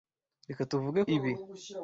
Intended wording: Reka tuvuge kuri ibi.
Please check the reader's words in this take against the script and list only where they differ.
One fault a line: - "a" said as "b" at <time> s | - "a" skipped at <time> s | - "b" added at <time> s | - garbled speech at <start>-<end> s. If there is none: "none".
- "kuri" skipped at 1.0 s